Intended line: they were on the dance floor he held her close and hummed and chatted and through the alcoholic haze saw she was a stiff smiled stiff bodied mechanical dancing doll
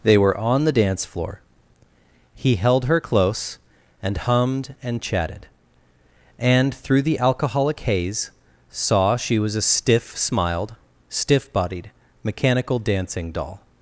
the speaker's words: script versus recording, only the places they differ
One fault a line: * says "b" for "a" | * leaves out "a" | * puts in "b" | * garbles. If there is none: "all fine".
all fine